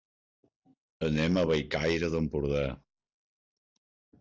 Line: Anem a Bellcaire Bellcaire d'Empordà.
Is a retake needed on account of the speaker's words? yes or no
yes